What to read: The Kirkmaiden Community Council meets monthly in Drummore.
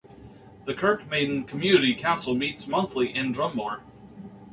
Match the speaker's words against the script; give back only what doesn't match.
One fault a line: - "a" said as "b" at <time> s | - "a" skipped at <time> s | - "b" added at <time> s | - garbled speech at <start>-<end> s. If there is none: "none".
none